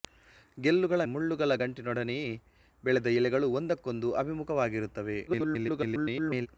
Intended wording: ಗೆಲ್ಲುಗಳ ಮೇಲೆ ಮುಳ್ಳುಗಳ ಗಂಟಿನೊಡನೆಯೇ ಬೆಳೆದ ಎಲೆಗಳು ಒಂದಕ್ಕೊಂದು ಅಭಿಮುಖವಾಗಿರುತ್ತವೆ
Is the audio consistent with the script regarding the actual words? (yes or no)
no